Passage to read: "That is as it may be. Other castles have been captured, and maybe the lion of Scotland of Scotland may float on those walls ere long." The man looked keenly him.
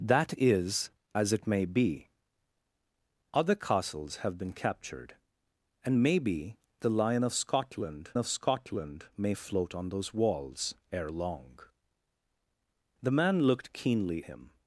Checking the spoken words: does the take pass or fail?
pass